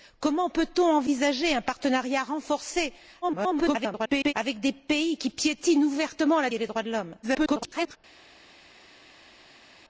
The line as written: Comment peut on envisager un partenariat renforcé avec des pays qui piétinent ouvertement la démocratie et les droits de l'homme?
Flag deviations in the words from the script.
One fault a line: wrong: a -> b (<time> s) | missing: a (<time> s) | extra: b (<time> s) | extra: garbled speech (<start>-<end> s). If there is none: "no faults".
extra: garbled speech (3.2-4.3 s)
missing: démocratie (6.5 s)
extra: garbled speech (7.2-8.0 s)